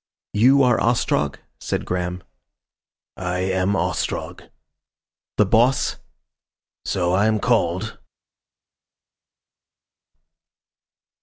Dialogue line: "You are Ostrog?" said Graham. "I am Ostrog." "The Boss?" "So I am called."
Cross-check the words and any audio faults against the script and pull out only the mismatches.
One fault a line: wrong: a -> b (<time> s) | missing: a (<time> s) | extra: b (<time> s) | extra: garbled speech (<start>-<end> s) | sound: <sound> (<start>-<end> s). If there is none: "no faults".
no faults